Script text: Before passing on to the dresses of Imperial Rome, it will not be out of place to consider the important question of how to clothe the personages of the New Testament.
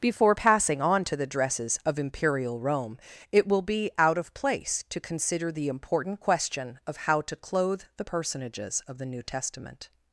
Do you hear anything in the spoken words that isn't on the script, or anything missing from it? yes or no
yes